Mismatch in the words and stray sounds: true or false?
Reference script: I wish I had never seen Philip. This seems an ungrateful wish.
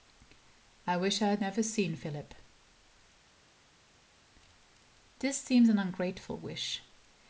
false